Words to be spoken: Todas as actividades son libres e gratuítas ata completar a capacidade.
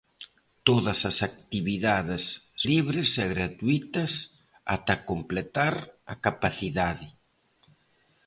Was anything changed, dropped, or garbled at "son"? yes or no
yes